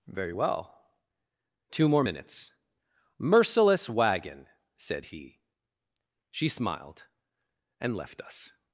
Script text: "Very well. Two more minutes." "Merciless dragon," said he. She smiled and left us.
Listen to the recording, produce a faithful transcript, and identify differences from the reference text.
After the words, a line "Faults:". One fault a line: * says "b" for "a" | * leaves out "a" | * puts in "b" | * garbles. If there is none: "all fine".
"Very well. Two more minutes." "Merciless wagon," said he. She smiled and left us.
Faults:
* says "wagon" for "dragon"